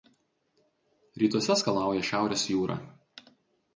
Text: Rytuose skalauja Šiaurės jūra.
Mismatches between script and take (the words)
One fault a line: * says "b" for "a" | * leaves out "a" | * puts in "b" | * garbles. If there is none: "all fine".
all fine